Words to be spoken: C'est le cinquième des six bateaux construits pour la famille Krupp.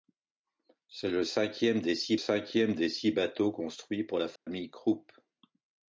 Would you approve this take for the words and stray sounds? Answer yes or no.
no